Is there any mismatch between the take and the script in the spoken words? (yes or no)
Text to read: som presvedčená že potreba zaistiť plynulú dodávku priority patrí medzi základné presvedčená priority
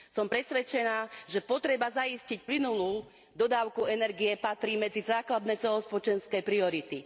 yes